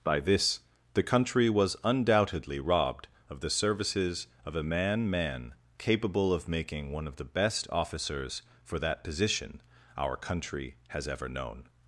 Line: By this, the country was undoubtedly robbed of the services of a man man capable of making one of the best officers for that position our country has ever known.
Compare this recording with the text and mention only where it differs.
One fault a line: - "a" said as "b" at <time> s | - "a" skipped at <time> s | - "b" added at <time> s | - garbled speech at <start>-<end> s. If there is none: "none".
none